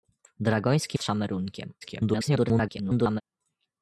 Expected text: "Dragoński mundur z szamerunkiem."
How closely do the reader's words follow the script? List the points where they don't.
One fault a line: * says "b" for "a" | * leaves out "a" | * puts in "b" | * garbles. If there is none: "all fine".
* leaves out "mundur"
* garbles